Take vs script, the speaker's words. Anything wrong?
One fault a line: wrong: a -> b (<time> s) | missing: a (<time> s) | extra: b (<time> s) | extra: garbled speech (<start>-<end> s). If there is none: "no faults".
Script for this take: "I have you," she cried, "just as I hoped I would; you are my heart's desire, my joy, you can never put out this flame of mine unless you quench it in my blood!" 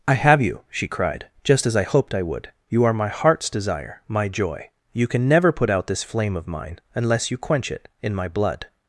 no faults